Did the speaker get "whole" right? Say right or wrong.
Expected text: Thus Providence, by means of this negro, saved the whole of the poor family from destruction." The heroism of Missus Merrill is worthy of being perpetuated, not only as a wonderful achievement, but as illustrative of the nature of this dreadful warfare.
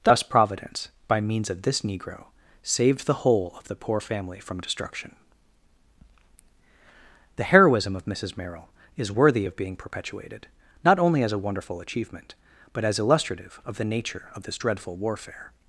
right